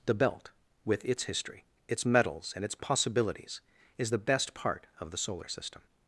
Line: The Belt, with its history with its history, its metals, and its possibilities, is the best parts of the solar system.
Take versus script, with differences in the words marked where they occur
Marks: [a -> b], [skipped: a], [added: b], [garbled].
The Belt, with its history [skipped: with] its [skipped: history, its] metals, and its possibilities, is the best [parts -> part] of the solar system.